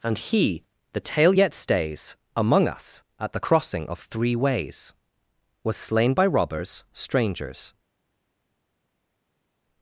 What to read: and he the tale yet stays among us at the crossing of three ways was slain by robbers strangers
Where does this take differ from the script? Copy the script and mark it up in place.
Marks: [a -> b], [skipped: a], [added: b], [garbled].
and he the tale yet stays among us at the crossing of three ways was slain by robbers strangers